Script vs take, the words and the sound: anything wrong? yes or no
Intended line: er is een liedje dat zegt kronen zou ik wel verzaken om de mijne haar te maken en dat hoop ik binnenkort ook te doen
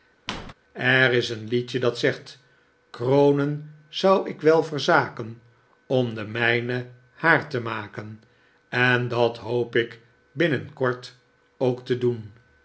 yes